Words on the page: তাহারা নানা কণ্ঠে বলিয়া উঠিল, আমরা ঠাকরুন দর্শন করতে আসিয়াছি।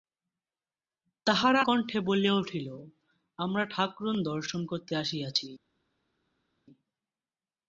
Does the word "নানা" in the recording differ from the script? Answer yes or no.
yes